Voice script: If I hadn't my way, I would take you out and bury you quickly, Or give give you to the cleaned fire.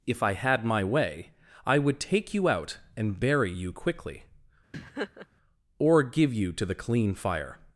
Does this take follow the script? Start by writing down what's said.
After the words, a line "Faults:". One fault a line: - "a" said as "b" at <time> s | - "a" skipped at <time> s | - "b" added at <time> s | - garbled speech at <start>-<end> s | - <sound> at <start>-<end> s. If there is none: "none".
If I had my way, I would take you out and bury you quickly, Or give you to the clean fire.
Faults:
- "hadn't" said as "had" at 0.3 s
- laugh at 4.7-5.3 s
- "give" skipped at 6.3 s
- "cleaned" said as "clean" at 6.8 s